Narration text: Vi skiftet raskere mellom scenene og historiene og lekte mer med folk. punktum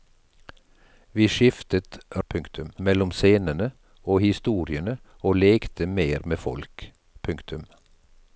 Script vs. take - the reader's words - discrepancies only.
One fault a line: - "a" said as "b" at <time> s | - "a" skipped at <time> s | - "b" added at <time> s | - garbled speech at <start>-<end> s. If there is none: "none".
- "raskere" said as "punktum" at 2.3 s